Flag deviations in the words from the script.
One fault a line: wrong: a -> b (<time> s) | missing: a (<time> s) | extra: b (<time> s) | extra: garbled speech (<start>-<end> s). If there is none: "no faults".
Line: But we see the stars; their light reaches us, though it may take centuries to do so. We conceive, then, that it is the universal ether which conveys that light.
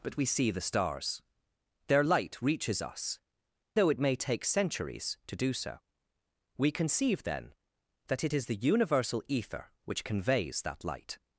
no faults